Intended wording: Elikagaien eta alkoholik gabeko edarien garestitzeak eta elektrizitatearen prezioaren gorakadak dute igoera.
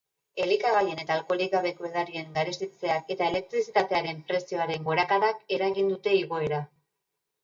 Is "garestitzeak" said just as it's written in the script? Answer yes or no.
yes